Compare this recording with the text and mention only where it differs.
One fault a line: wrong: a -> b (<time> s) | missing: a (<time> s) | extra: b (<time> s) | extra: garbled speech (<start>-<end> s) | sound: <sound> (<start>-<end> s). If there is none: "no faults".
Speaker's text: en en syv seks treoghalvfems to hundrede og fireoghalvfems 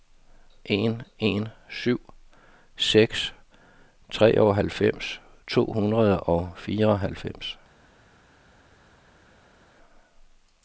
no faults